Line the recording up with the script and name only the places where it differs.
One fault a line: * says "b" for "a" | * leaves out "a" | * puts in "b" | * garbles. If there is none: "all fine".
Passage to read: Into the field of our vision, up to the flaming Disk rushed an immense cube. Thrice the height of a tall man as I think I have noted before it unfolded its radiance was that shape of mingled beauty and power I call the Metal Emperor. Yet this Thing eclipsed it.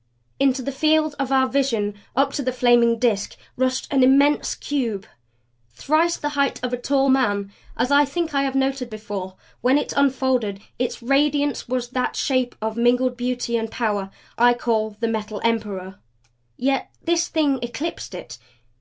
* puts in "when"